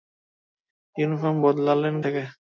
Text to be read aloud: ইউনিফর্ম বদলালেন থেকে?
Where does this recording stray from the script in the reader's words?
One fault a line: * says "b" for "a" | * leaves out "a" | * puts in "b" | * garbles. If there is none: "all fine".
all fine